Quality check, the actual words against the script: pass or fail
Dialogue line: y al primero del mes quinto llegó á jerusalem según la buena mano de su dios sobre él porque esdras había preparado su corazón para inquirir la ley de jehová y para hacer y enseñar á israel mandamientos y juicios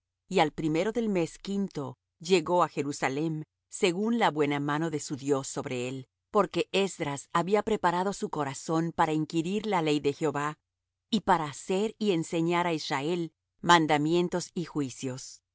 pass